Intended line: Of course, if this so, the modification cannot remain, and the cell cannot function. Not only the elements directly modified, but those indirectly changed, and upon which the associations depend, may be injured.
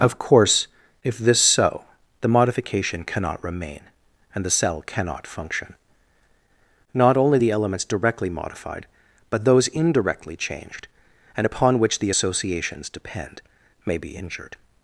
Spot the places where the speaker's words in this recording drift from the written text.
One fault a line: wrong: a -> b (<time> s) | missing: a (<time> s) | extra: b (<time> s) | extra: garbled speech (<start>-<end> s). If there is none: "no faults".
no faults